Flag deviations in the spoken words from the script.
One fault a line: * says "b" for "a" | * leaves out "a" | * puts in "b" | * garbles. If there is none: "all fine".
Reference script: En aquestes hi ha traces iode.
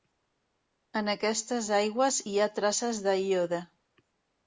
* puts in "aigües"
* puts in "de"